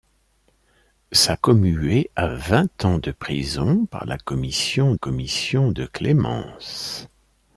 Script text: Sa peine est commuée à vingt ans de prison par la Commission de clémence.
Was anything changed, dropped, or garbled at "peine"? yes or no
yes